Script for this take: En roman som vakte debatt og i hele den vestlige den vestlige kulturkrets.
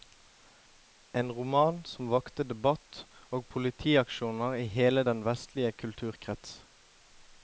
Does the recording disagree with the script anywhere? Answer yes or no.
yes